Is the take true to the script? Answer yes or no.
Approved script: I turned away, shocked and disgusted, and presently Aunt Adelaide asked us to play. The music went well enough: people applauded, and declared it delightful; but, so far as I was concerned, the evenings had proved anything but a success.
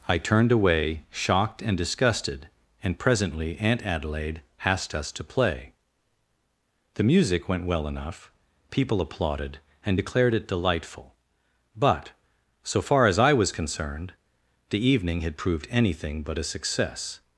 no